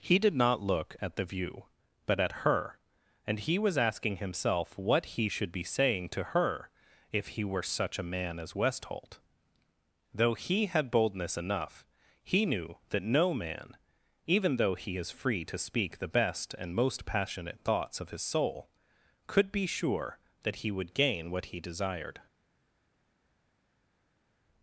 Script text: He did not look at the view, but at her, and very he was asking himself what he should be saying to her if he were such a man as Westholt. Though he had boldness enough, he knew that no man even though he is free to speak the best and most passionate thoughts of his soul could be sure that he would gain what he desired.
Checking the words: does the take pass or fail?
fail